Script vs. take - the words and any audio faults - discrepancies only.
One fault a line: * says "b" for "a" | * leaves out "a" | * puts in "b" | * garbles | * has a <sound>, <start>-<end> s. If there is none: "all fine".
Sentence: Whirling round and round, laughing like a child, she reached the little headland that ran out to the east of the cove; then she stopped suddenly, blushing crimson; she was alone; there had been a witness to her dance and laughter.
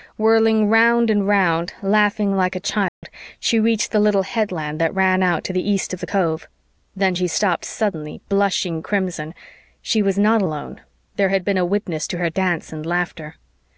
* has a dropout, 2.9-3.0 s
* puts in "not"